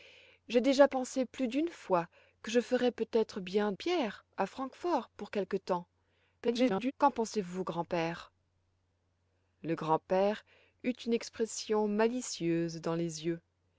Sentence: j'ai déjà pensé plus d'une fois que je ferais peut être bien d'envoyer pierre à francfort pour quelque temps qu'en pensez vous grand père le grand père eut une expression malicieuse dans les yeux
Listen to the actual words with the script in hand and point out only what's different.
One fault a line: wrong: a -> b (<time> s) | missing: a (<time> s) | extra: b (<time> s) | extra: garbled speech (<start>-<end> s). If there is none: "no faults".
missing: d'envoyer (3.7 s)
extra: garbled speech (6.4-6.9 s)